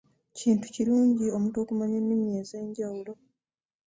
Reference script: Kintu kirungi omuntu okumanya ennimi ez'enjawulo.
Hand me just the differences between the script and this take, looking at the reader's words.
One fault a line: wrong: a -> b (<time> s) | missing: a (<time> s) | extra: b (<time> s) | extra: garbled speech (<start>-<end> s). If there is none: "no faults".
no faults